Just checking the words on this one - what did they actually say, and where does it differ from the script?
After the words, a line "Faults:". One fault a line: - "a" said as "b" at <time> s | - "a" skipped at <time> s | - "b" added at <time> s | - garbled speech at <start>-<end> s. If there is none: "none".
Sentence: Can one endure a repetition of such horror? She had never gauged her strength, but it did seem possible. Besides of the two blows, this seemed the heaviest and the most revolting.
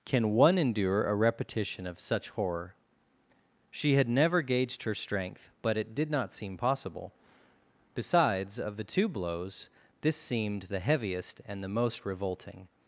Can one endure a repetition of such horror? She had never gauged her strength, but it did not seem possible. Besides of the two blows, this seemed the heaviest and the most revolting.
Faults:
- "not" added at 6.1 s